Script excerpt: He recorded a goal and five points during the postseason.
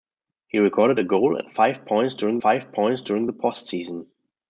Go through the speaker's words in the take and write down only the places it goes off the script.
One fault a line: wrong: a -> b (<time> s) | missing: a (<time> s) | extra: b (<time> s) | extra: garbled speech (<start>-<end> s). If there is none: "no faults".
extra: five points during (2.4 s)